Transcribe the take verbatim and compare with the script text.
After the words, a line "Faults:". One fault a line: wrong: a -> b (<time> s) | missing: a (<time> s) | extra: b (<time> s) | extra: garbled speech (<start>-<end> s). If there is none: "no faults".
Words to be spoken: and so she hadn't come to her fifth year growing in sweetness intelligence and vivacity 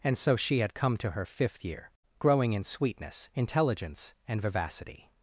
and so she had come to her fifth year growing in sweetness intelligence and vivacity
Faults:
wrong: hadn't -> had (0.6 s)